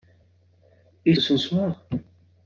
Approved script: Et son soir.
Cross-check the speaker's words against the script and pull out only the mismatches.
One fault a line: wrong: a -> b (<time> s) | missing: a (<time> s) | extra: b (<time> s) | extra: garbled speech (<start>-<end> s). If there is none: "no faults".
no faults